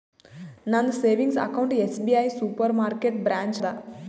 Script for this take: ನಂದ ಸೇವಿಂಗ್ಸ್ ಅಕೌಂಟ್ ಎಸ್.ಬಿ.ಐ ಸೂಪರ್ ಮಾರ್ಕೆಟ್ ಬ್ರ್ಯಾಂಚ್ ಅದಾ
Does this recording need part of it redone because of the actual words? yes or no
no